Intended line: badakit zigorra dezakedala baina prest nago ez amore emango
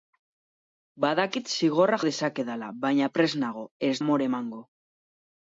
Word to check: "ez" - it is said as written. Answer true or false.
true